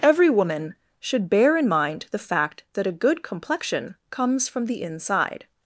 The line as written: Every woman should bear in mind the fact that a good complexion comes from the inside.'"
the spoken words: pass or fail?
pass